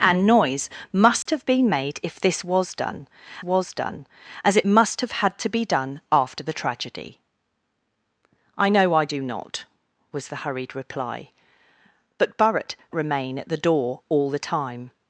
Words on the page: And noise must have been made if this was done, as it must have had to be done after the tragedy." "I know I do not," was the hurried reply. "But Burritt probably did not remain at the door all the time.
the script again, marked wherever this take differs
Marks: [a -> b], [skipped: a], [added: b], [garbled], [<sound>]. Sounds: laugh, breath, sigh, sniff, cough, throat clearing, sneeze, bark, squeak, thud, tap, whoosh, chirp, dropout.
And noise must [dropout] have been made if this was done, [added: was done] as it must have had to be done after the tragedy." "I know I do not," was the hurried reply. "But Burritt [skipped: probably did not] remain at the door all the time.